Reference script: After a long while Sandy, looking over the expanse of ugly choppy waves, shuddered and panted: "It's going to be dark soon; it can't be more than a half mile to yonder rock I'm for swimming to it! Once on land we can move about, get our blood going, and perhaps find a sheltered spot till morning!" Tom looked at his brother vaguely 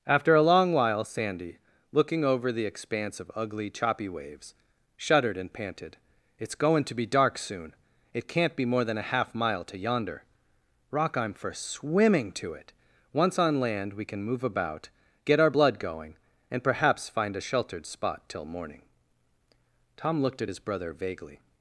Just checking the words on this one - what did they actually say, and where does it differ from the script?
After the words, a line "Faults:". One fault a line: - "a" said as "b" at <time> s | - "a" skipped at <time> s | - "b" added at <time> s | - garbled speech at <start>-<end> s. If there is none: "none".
After a long while Sandy, looking over the expanse of ugly choppy waves, shuddered and panted: "It's going to be dark soon; it can't be more than a half mile to yonder rock I'm for swimming to it! Once on land we can move about, get our blood going, and perhaps find a sheltered spot till morning!" Tom looked at his brother vaguely
Faults:
none